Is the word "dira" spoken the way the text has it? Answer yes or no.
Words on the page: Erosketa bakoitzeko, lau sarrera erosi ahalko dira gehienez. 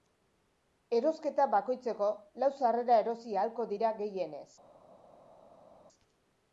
yes